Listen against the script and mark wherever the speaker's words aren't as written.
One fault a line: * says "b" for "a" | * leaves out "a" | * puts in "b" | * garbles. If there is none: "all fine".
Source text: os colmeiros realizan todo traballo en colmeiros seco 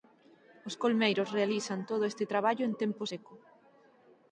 * puts in "este"
* says "tempo" for "colmeiros"